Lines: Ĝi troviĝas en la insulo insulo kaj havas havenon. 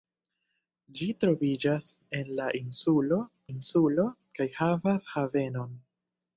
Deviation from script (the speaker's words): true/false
false